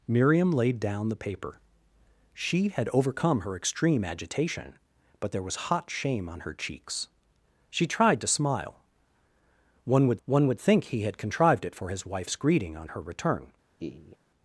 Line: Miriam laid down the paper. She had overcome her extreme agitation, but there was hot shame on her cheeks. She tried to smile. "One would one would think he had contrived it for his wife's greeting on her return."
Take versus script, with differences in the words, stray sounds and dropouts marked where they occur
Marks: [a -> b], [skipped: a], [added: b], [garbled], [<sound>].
Miriam laid down the paper. She had overcome her extreme agitation, but there was hot shame on her cheeks. She tried to smile. "One would one would think he had contrived it for his wife's greeting on her return." [laugh]